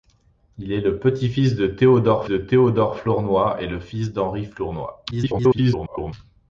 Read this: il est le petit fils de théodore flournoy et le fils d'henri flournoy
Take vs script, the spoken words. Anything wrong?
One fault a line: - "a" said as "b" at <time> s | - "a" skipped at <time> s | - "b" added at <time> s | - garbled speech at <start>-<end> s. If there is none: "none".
- "de théodore" added at 2.2 s
- garbled speech at 5.1-6.1 s